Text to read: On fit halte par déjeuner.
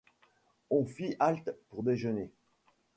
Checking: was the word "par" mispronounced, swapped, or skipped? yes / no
yes